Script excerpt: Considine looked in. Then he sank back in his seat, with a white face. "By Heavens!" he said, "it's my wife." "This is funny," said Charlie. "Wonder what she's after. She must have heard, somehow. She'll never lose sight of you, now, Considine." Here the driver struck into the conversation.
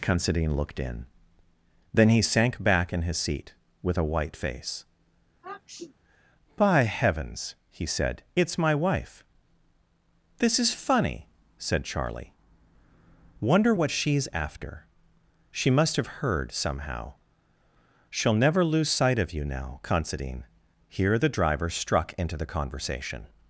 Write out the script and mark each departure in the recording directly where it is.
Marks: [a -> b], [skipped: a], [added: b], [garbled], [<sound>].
Considine looked in. Then he sank back in his seat, with a white face. [sniff] "By Heavens!" he said, "it's my wife." "This is funny," said Charlie. "Wonder what she's after. She must have heard, somehow. She'll never lose sight of you, now, Considine." Here the driver struck into the conversation.